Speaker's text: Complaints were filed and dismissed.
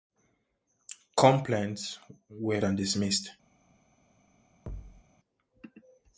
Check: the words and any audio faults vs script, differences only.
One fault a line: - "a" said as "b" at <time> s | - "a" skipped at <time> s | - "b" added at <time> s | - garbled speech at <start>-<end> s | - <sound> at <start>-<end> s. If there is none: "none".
- "filed" skipped at 2.6 s
- thud at 4.7-5.0 s